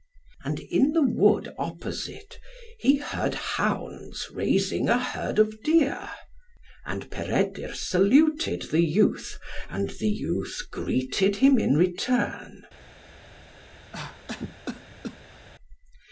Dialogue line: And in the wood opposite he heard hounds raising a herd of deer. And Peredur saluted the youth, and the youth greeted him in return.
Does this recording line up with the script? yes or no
yes